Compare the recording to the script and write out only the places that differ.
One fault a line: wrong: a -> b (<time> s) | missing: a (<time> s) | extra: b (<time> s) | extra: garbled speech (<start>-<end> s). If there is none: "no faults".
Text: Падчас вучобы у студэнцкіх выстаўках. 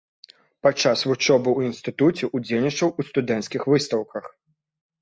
extra: ў інстытуце ўдзельнічаў (1.6 s)